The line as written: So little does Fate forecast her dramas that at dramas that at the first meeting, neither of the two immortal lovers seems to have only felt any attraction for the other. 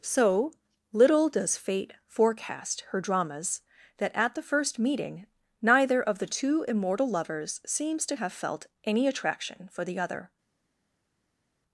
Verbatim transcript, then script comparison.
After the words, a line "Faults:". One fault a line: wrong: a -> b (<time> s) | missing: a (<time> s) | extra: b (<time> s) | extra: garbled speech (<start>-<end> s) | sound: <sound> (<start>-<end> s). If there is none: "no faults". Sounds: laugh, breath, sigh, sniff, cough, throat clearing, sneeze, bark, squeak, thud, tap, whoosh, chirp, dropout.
So little does Fate forecast her dramas that at the first meeting, neither of the two immortal lovers seems to have felt any attraction for the other.
Faults:
missing: dramas that at (4.3 s)
missing: only (8.3 s)